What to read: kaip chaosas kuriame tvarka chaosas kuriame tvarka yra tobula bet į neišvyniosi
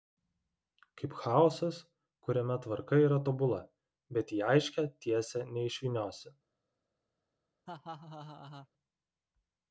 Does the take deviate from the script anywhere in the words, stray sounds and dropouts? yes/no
yes